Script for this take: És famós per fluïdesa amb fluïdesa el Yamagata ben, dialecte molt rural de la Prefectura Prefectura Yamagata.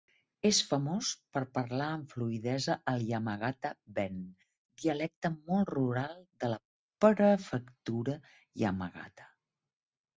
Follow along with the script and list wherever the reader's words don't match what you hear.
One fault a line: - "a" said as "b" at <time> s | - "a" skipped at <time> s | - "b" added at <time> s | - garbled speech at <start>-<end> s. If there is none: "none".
- "fluïdesa" said as "parlar" at 1.6 s
- "Prefectura" skipped at 8.2 s